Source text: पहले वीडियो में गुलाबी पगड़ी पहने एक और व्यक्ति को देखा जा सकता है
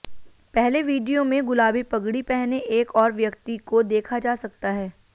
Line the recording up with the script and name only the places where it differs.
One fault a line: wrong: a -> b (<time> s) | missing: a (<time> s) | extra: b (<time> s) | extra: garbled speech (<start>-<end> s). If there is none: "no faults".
no faults